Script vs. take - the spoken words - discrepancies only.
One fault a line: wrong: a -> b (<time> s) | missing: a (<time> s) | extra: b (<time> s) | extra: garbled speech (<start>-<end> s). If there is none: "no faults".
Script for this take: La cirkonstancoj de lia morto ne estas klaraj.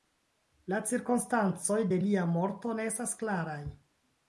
no faults